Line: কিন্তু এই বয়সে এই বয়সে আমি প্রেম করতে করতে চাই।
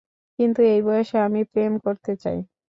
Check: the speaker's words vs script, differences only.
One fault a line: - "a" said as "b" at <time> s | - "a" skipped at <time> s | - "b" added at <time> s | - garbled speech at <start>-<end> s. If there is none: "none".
- "এই বয়সে" skipped at 1.2 s
- "করতে" skipped at 2.1 s